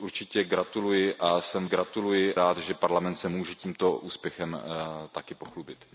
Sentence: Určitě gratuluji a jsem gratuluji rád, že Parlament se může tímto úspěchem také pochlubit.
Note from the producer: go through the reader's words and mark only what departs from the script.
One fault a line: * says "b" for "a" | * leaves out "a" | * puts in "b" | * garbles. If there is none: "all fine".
all fine